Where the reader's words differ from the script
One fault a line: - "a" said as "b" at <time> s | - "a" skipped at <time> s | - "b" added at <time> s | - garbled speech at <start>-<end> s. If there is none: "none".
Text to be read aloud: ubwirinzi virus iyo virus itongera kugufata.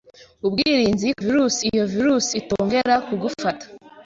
none